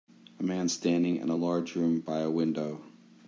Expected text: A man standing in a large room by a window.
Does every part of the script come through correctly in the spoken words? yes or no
yes